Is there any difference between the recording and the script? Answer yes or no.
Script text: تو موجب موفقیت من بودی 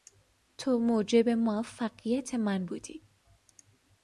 no